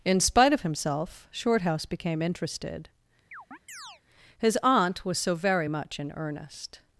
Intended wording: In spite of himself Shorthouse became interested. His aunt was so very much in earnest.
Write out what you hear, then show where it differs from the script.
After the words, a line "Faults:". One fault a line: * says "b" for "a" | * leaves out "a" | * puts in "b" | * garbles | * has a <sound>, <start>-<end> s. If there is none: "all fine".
In spite of himself Shorthouse became interested. His aunt was so very much in earnest.
Faults:
* has a chirp, 3.3-4.0 s